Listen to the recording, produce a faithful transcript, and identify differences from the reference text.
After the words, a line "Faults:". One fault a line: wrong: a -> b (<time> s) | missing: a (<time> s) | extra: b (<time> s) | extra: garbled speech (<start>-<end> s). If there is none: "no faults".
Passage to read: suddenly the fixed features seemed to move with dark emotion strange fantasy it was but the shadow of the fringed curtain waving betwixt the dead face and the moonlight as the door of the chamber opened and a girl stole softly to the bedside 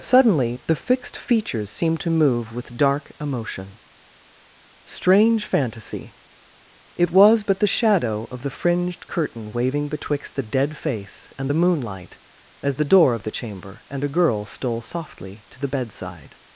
suddenly the fixed features seemed to move with dark emotion strange fantasy it was but the shadow of the fringed curtain waving betwixt the dead face and the moonlight as the door of the chamber and a girl stole softly to the bedside
Faults:
missing: opened (13.8 s)